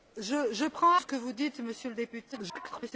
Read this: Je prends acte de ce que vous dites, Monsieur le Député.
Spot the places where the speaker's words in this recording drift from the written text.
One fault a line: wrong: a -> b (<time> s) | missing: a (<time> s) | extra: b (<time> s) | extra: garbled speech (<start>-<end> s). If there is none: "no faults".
missing: acte de (0.9 s)
extra: garbled speech (2.3-2.9 s)